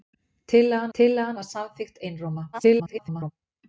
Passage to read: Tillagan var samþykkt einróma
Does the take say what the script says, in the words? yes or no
no